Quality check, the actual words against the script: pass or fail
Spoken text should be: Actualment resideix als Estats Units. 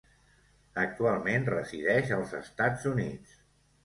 pass